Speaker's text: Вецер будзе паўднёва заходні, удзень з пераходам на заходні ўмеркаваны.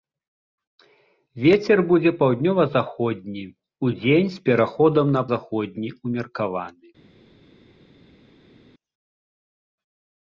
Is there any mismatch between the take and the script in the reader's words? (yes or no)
no